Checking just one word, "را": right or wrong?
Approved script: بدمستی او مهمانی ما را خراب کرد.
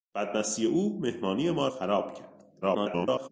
wrong